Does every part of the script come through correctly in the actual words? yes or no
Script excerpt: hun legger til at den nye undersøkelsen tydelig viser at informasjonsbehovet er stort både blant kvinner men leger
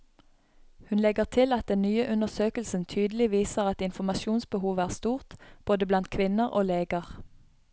no